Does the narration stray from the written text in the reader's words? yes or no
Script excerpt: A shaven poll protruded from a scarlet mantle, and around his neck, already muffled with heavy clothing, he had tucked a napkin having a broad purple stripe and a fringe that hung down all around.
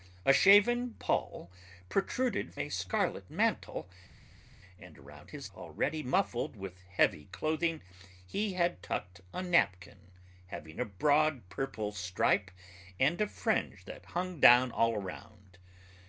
yes